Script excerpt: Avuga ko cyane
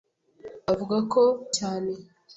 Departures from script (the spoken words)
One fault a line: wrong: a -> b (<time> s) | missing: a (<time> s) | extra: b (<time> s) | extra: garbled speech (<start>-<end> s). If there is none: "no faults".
no faults